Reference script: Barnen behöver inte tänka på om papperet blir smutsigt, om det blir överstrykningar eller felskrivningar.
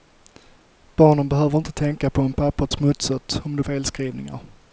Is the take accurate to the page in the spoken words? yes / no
no